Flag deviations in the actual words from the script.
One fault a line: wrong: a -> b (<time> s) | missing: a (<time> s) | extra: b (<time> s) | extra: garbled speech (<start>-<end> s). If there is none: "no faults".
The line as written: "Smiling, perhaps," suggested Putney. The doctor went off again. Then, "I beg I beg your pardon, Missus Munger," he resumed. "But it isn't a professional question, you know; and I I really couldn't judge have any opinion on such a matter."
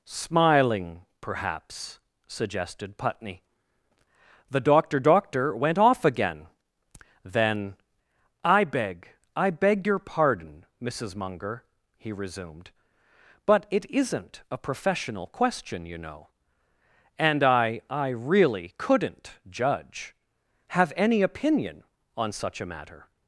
extra: doctor (5.0 s)